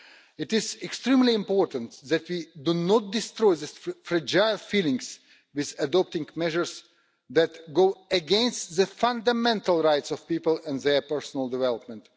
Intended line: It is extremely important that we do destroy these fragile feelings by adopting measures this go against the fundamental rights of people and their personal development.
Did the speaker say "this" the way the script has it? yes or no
no